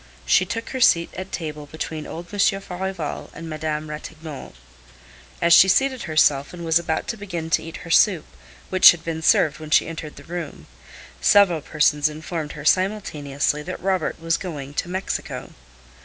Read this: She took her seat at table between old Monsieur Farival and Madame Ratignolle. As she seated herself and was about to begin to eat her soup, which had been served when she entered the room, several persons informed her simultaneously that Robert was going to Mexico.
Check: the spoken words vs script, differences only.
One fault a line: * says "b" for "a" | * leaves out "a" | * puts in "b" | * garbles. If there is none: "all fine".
all fine